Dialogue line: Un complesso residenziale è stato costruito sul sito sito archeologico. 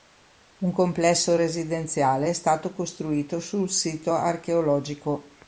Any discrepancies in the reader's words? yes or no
yes